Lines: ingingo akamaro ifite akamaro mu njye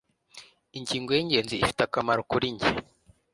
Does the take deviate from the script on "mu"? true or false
true